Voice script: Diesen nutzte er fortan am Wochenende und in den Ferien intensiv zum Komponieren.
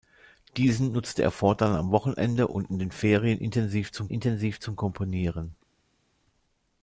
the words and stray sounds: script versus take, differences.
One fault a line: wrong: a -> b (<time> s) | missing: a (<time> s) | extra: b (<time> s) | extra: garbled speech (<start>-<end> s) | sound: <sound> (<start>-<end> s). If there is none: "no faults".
extra: intensiv zum (4.1 s)